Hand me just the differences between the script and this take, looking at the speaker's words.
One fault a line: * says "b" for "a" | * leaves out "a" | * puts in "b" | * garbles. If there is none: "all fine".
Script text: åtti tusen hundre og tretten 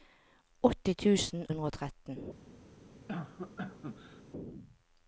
all fine